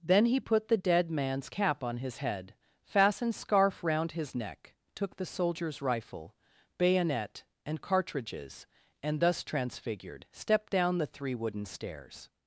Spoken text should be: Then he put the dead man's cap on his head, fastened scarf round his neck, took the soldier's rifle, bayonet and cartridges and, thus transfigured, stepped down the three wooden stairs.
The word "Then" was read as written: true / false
true